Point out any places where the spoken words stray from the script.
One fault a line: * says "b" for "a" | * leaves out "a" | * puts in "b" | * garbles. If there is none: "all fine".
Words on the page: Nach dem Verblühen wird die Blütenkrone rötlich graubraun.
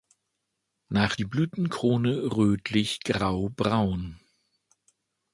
* leaves out "dem Verblühen wird"